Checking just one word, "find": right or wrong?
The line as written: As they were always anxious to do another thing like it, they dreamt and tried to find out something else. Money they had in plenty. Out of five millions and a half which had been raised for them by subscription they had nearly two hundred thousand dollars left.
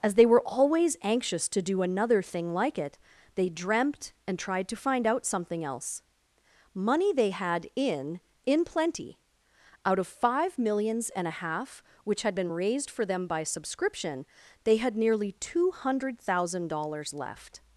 right